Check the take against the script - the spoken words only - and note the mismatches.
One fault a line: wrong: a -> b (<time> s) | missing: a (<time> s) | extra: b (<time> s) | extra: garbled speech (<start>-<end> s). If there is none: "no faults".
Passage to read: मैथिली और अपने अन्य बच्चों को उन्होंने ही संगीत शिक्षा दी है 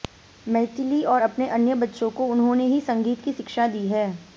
extra: की (3.2 s)